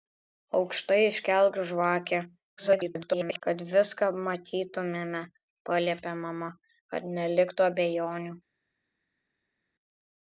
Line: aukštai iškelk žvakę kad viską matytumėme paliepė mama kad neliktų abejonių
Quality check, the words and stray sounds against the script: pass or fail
fail